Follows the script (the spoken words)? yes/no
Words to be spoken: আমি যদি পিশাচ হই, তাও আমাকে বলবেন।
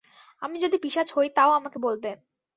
yes